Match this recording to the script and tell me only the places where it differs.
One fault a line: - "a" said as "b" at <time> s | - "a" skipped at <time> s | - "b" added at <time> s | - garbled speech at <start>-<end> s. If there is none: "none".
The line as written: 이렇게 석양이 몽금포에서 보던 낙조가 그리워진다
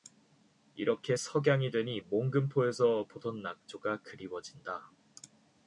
- "되니" added at 1.7 s